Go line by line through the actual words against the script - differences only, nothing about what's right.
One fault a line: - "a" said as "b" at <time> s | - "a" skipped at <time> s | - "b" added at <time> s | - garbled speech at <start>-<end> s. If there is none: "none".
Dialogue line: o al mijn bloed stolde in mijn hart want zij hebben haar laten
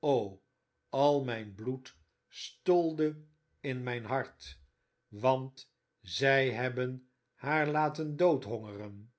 none